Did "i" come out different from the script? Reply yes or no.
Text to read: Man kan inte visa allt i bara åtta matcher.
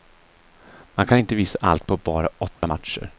yes